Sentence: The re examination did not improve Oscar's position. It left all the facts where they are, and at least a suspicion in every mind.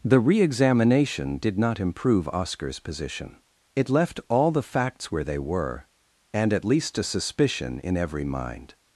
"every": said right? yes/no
yes